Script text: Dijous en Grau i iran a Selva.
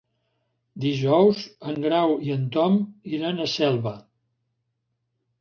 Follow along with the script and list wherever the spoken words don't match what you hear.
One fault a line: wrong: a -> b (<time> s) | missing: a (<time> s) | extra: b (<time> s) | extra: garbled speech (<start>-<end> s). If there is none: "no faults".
extra: en Tom (2.4 s)